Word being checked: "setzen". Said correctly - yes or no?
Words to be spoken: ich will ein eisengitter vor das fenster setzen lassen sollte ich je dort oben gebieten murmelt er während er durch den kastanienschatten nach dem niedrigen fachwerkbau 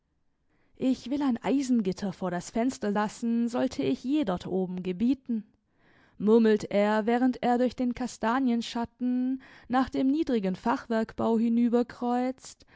no